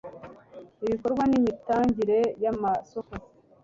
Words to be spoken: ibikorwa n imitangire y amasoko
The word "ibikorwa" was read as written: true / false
true